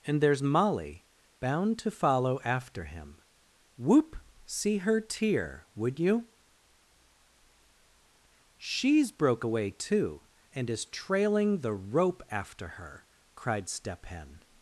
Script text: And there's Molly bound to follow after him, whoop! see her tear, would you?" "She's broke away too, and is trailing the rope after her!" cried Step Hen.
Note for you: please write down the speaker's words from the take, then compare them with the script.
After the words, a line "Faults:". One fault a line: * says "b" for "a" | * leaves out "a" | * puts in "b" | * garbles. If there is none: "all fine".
And there's Molly bound to follow after him, whoop! see her tear, would you?" "She's broke away too, and is trailing the rope after her!" cried Step Hen.
Faults:
all fine